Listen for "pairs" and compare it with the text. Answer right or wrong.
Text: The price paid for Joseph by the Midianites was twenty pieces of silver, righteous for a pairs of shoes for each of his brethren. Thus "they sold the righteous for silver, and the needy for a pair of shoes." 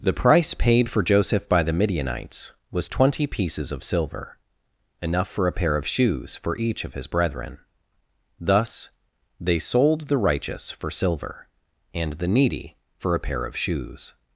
wrong